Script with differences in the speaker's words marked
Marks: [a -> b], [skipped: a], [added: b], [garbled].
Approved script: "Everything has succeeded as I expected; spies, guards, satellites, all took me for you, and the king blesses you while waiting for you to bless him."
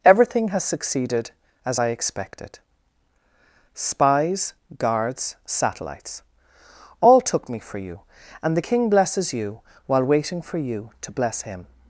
"Everything has succeeded as I expected; spies, guards, satellites, all took me for you, and the king blesses you while waiting for you to bless him."